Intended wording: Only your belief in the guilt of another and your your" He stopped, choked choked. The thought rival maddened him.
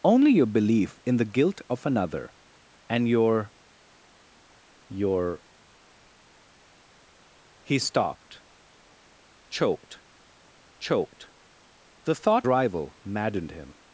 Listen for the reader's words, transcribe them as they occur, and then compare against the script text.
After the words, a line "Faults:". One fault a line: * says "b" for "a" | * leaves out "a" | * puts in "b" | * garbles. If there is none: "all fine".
Only your belief in the guilt of another and your your" He stopped, choked choked. The thought rival maddened him.
Faults:
all fine